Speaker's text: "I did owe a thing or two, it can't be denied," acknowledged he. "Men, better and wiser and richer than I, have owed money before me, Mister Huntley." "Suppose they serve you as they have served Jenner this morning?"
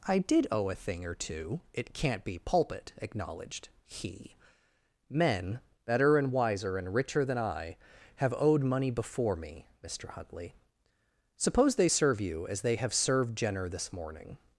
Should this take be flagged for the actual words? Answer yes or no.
yes